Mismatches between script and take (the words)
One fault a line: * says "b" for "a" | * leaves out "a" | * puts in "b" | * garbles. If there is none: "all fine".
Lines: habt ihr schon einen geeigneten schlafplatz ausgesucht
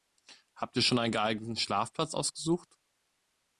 all fine